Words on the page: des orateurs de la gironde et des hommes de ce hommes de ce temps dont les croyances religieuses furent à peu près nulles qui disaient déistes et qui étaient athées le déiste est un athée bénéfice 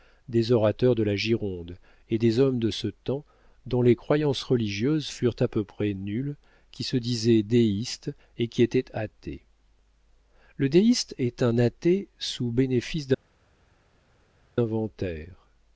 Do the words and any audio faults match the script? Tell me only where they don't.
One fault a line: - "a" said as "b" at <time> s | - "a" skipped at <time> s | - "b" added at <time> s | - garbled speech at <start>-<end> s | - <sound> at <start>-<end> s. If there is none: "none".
- "hommes de ce" skipped at 2.9 s
- "se" added at 6.8 s
- "sous" added at 12.2 s